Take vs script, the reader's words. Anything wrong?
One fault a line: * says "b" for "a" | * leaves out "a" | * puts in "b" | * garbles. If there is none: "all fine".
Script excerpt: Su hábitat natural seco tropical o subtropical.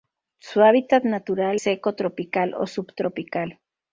all fine